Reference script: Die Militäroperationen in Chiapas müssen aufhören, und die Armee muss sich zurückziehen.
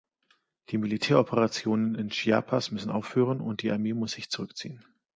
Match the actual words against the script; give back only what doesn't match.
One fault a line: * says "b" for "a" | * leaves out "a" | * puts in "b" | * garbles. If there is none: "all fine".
all fine